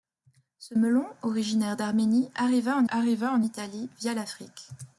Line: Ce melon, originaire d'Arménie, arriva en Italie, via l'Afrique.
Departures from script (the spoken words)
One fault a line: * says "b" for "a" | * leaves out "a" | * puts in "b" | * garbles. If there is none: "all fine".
* puts in "arriva en"